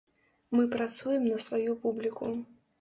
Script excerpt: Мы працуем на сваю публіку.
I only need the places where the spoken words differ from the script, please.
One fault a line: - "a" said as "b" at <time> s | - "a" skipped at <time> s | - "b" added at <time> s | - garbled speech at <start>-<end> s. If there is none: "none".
none